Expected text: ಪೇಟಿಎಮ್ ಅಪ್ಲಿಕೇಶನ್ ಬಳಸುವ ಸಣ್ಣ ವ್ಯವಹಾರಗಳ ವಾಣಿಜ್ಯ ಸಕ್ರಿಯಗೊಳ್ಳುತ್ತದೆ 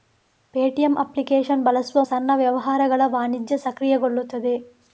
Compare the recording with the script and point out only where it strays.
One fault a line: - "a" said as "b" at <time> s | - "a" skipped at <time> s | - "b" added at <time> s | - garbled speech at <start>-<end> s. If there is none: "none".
none